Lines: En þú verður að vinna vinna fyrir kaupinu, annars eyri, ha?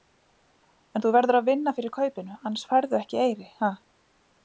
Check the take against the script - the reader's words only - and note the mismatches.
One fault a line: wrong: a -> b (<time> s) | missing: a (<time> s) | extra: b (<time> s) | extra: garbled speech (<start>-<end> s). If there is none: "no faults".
missing: vinna (1.8 s)
extra: færðu ekki (2.7 s)